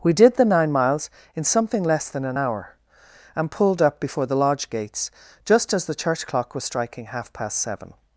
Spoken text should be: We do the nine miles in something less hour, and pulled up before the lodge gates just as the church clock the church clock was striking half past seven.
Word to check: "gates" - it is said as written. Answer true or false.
true